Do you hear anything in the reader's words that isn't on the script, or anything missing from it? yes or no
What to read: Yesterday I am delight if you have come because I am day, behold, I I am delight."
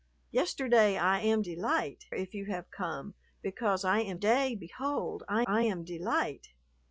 no